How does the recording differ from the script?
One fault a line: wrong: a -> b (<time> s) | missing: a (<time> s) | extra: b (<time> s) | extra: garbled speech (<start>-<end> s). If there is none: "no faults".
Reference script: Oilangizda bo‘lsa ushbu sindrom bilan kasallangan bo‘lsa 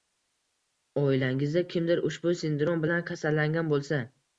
wrong: bo‘lsa -> kimdir (1.8 s)